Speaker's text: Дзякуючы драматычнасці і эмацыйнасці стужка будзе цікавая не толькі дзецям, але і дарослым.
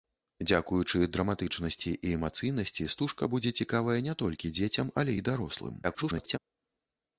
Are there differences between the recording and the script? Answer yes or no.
yes